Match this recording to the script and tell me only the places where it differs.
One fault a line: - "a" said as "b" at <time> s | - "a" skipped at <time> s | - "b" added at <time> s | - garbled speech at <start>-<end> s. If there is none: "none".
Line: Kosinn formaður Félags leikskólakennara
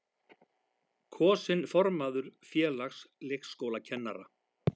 none